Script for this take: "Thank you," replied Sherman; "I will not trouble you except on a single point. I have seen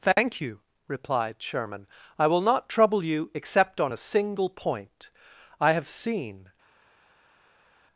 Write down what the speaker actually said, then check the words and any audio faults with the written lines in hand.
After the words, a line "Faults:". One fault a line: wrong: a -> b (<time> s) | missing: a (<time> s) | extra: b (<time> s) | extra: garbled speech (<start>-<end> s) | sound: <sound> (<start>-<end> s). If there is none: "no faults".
"Thank you," replied Sherman; "I will not trouble you except on a single point. I have seen
Faults:
no faults